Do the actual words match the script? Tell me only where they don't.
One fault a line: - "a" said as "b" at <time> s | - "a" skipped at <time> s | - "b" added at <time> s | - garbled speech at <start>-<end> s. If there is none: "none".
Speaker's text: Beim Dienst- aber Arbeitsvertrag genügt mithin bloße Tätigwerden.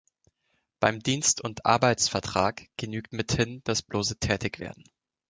- "aber" said as "und" at 1.4 s
- "das" added at 3.6 s